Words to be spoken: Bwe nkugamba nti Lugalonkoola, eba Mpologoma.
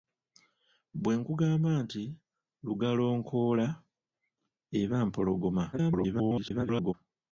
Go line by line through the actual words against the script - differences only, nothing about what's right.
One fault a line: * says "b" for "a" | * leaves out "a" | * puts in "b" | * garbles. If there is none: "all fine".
* garbles